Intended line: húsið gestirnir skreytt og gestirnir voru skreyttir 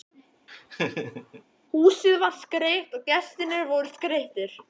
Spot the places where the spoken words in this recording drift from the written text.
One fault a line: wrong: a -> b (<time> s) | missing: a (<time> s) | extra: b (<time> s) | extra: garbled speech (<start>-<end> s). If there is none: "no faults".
wrong: gestirnir -> var (2.2 s)